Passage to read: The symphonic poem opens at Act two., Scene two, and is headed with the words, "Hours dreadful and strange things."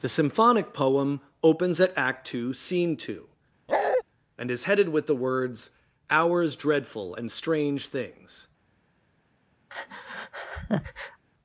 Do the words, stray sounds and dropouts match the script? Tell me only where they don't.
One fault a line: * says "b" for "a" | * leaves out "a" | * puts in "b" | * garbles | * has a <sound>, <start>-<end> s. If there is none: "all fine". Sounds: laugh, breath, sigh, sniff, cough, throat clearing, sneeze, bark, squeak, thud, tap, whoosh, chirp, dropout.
* has a bark, 3.7-4.0 s
* has a breath, 9.7-11.2 s